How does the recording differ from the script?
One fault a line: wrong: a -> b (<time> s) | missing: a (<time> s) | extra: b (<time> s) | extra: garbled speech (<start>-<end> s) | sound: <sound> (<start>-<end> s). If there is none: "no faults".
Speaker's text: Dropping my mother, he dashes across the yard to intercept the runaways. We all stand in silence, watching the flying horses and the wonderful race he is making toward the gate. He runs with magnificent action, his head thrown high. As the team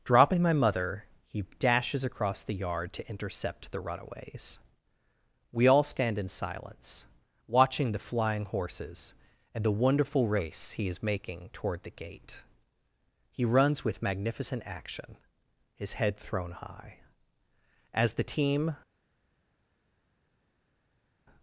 no faults